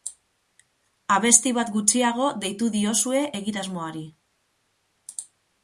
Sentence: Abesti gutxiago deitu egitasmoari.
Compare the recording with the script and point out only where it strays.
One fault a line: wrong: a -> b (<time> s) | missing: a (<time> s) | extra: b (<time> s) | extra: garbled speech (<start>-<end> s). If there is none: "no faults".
extra: bat (1.6 s)
extra: diozue (2.8 s)